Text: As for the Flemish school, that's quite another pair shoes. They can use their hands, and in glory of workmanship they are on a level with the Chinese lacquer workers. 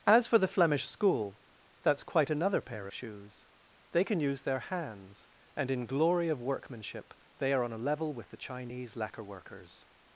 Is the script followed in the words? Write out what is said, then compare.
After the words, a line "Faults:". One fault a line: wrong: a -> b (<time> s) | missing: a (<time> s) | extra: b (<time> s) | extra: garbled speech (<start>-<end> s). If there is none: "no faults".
As for the Flemish school, that's quite another pair shoes. They can use their hands, and in glory of workmanship they are on a level with the Chinese lacquer workers.
Faults:
no faults